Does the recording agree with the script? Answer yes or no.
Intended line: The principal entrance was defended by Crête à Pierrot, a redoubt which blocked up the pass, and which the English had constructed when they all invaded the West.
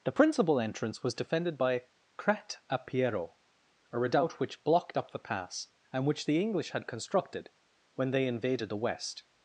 no